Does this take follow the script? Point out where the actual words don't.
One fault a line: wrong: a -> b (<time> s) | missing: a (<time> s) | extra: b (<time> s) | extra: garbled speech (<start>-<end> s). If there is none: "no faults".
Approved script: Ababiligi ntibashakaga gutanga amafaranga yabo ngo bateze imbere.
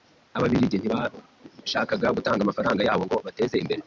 no faults